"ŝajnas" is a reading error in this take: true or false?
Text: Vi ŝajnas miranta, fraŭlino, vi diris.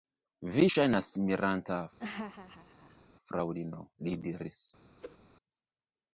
false